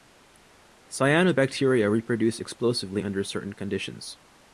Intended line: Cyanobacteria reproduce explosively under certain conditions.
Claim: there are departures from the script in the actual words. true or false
false